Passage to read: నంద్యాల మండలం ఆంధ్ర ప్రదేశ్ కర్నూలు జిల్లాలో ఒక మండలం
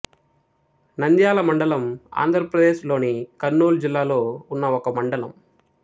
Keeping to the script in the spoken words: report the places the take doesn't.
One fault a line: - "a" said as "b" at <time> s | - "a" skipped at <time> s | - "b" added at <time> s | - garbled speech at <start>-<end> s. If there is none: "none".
- "లోని" added at 2.9 s
- "ఉన్న" added at 4.5 s